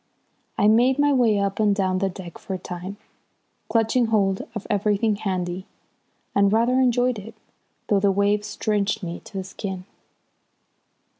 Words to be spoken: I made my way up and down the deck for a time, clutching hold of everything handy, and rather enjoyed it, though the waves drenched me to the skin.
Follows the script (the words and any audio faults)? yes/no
yes